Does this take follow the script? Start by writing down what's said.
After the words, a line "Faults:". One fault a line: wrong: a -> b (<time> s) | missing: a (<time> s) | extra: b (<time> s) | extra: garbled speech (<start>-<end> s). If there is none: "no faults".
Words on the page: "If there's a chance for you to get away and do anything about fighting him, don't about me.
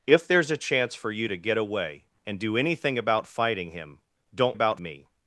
"If there's a chance for you to get away and do anything about fighting him, don't about me.
Faults:
no faults